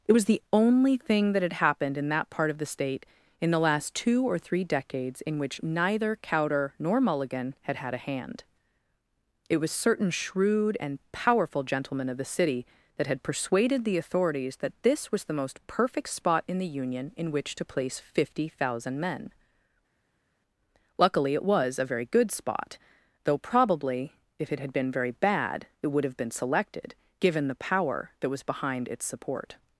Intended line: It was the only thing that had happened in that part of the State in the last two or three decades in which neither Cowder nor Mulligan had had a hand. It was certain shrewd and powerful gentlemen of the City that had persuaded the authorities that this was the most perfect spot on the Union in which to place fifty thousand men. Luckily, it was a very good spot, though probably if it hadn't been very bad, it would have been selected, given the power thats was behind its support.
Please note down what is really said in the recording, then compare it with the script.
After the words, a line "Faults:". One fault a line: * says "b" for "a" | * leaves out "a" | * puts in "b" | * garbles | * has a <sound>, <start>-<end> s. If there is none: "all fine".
It was the only thing that had happened in that part of the State in the last two or three decades in which neither Cowder nor Mulligan had had a hand. It was certain shrewd and powerful gentlemen of the City that had persuaded the authorities that this was the most perfect spot in the Union in which to place fifty thousand men. Luckily, it was a very good spot, though probably if it had been very bad, it would have been selected, given the power that was behind its support.
Faults:
* says "in" for "on"
* says "had" for "hadn't"
* says "that" for "thats"